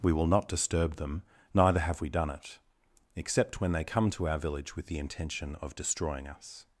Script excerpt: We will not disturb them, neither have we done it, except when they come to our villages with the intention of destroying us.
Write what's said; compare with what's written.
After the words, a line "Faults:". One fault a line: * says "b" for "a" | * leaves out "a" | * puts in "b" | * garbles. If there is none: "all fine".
We will not disturb them, neither have we done it, except when they come to our village with the intention of destroying us.
Faults:
* says "village" for "villages"